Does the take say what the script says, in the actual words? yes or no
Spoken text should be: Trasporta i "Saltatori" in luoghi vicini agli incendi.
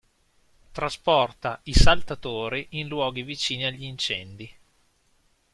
yes